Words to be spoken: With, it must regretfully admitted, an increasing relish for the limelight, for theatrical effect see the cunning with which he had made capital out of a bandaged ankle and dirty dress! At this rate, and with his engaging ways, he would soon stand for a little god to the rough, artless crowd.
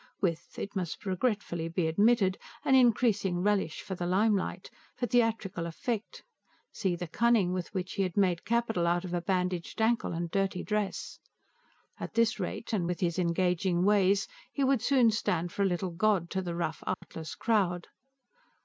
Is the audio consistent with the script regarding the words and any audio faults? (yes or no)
no